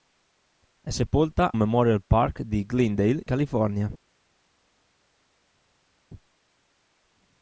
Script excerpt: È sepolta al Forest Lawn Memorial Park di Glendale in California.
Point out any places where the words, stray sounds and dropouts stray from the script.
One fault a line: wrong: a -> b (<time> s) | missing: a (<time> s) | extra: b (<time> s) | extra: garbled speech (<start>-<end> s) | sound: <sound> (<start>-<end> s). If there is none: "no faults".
missing: al Forest Lawn (1.5 s)
missing: in (3.2 s)